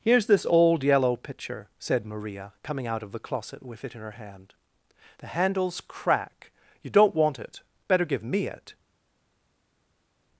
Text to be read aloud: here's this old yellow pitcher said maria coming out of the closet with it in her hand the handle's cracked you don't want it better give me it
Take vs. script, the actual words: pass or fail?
fail